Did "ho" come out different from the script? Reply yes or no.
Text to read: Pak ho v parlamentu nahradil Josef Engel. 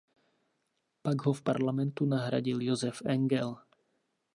no